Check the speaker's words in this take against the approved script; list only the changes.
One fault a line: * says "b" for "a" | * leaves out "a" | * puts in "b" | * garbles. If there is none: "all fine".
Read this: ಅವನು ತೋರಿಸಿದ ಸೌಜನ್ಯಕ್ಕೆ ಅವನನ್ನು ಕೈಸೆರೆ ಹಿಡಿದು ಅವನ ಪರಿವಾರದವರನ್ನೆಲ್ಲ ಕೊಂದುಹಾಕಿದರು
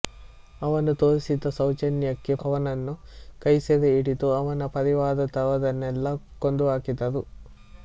all fine